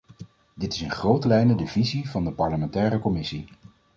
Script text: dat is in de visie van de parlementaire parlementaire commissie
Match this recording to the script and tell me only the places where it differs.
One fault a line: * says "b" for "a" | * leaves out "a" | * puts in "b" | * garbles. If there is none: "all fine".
* says "dit" for "dat"
* puts in "grote lijnen"
* leaves out "parlementaire"